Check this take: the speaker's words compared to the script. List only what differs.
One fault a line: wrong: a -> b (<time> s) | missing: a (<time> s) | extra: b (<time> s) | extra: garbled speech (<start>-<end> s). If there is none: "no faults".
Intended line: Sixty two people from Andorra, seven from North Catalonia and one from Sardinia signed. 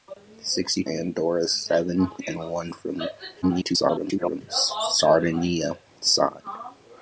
missing: two people from (0.8 s)
missing: from North Catalonia (2.1 s)
extra: garbled speech (3.4-4.4 s)